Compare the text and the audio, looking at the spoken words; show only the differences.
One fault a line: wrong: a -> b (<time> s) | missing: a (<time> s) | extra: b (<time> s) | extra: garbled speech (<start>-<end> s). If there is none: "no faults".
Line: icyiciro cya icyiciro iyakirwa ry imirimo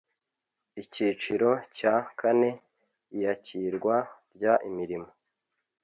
wrong: icyiciro -> kane (2.2 s)